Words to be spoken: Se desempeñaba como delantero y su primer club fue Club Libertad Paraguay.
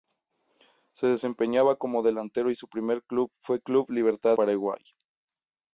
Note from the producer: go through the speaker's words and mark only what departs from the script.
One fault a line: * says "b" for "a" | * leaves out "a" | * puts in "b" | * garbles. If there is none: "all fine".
all fine